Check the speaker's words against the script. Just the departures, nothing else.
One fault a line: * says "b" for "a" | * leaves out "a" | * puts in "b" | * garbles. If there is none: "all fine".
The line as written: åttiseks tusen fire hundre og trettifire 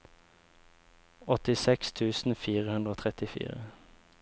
all fine